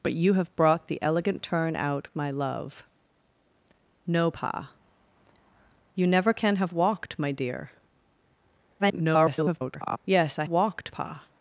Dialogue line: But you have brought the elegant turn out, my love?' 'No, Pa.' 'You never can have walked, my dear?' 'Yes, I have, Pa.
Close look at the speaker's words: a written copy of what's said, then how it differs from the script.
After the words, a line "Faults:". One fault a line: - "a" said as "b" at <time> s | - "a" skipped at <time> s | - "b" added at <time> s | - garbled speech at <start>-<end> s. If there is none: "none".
But you have brought the elegant turn out, my love?' 'No, Pa.' 'You never can have walked, my dear?' [garbled] 'Yes, I walked, Pa.
Faults:
- garbled speech at 8.8-10.0 s
- "have" said as "walked" at 10.5 s